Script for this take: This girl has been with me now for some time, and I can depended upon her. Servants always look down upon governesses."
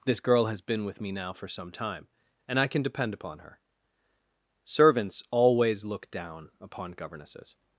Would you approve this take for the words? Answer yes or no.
no